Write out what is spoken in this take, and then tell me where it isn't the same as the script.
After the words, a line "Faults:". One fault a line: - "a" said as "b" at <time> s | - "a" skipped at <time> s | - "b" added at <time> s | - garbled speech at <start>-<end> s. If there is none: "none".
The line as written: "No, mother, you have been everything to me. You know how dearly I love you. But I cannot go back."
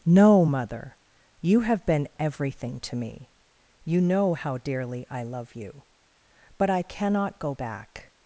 "No, mother, you have been everything to me. You know how dearly I love you. But I cannot go back."
Faults:
none